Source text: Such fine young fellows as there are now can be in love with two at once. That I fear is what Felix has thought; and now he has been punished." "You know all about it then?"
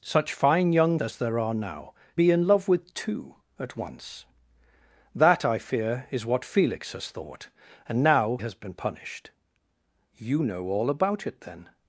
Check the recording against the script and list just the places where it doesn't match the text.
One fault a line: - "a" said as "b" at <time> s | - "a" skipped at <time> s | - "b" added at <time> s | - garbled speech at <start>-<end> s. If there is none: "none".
- "fellows" skipped at 1.0 s
- "can" skipped at 1.9 s
- "he" skipped at 8.4 s